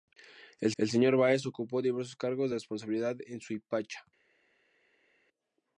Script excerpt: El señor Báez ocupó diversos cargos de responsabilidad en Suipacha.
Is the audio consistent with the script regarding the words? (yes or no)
no